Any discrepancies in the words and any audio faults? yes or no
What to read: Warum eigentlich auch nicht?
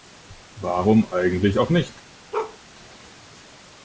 yes